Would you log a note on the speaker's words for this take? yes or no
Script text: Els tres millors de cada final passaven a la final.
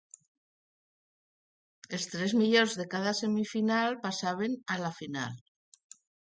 yes